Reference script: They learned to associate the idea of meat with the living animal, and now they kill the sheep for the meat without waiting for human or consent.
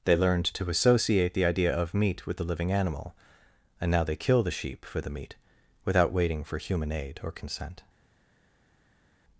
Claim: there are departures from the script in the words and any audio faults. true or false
true